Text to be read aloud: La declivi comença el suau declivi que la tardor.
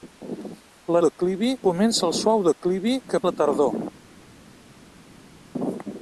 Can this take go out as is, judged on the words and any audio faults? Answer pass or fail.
pass